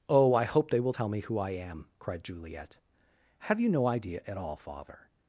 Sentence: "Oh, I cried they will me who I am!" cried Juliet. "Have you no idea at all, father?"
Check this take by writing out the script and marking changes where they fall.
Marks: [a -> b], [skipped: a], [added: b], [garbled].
"Oh, I [cried -> hope] they will [added: tell] me who I am!" cried Juliet. "Have you no idea at all, father?"